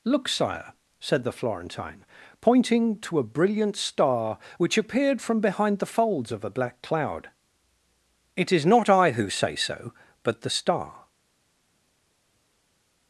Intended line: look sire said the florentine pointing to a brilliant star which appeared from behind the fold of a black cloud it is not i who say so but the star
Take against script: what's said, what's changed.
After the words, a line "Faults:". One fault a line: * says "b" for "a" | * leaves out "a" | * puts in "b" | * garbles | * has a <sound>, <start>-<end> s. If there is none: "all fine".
look sire said the florentine pointing to a brilliant star which appeared from behind the folds of a black cloud it is not i who say so but the star
Faults:
* says "folds" for "fold"